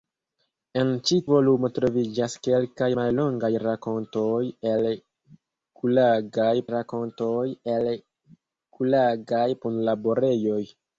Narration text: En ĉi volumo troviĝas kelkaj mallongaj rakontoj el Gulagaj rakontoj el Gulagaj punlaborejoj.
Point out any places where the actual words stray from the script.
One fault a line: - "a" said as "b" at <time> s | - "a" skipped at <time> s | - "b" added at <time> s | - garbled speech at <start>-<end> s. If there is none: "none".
none